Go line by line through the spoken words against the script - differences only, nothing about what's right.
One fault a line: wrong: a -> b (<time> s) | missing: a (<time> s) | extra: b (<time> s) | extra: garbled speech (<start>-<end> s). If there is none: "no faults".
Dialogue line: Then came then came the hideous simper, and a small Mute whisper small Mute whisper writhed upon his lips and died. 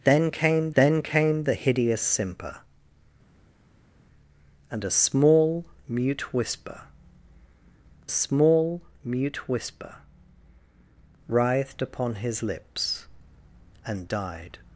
no faults